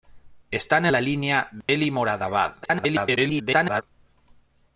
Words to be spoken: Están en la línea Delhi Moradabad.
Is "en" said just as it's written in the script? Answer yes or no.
no